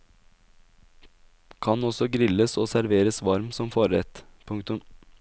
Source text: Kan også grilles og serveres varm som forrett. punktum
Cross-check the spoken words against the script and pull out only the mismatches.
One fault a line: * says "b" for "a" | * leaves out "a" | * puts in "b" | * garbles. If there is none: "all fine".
all fine